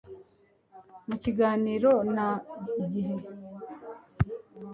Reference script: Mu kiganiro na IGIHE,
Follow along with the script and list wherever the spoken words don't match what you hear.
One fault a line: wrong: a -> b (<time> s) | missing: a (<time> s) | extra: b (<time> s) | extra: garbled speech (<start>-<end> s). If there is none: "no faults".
no faults